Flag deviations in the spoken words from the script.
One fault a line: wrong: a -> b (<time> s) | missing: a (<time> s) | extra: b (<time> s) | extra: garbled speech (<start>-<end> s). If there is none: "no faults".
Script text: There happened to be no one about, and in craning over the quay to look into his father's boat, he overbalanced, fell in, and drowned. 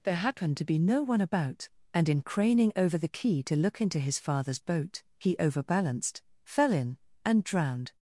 no faults